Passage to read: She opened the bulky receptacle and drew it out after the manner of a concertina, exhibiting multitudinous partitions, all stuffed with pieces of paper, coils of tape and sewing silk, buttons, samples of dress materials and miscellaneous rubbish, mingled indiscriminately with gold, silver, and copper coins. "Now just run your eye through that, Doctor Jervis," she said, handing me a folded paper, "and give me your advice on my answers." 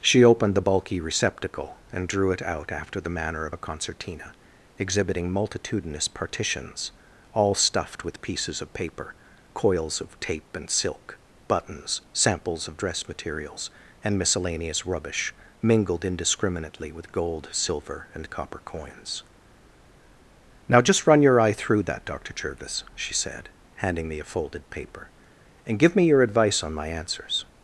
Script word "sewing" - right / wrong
wrong